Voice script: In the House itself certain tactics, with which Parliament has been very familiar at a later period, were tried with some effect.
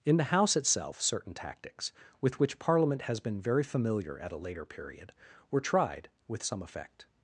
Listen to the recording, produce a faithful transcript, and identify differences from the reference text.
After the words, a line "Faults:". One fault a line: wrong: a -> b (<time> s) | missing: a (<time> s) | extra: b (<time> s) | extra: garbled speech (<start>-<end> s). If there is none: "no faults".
In the House itself certain tactics, with which Parliament has been very familiar at a later period, were tried with some effect.
Faults:
no faults